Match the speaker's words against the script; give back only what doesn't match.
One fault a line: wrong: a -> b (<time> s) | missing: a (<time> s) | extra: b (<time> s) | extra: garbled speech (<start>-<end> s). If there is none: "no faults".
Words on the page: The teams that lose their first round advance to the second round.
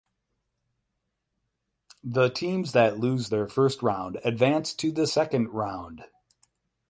no faults